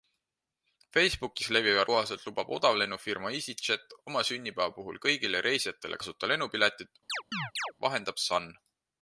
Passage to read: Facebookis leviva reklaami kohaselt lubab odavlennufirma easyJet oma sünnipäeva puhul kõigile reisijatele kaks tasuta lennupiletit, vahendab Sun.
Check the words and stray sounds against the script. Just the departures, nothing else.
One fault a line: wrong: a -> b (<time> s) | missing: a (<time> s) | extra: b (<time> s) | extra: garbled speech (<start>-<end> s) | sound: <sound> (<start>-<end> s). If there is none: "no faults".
missing: reklaami (1.8 s)
missing: kaks (6.0 s)
sound: chirp (7.1-7.7 s)